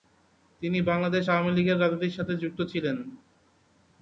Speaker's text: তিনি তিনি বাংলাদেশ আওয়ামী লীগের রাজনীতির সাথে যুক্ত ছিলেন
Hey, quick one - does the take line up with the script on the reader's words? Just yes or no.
no